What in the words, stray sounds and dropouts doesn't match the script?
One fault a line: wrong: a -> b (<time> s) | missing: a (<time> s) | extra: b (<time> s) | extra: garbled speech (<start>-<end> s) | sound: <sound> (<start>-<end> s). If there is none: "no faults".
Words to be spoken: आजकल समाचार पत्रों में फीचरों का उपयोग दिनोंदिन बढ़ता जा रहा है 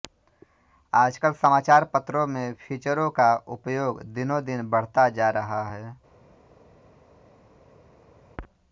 no faults